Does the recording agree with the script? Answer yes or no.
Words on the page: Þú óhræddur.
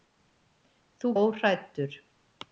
yes